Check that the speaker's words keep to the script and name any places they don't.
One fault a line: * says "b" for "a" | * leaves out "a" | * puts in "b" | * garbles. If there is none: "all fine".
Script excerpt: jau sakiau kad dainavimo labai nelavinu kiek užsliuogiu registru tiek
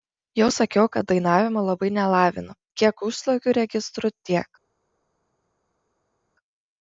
all fine